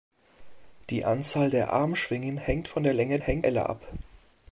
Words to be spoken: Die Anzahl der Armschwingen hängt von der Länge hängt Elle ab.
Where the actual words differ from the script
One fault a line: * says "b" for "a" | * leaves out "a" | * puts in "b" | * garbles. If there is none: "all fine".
all fine